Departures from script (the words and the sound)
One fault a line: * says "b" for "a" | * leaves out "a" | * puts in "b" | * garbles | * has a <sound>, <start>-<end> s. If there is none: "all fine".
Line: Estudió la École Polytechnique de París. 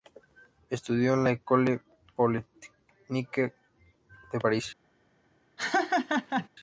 * puts in "en"
* has a laugh, 5.6-6.5 s